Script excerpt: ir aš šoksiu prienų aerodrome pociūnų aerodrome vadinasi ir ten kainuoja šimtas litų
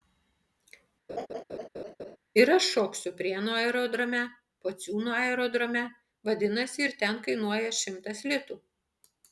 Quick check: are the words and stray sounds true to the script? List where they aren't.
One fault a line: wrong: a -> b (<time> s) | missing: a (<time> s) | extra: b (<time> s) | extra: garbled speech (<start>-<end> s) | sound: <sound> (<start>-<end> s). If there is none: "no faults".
sound: laugh (1.1-2.2 s)